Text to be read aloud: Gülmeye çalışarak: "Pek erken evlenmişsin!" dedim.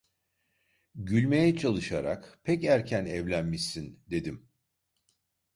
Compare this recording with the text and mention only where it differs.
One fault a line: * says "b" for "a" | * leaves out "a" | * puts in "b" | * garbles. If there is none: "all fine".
all fine